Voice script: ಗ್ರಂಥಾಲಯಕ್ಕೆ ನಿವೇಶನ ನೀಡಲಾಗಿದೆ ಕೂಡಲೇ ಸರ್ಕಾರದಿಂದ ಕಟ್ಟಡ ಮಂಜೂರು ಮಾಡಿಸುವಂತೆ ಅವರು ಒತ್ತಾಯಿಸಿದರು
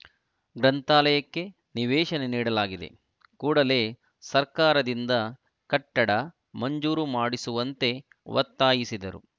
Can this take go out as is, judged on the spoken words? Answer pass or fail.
fail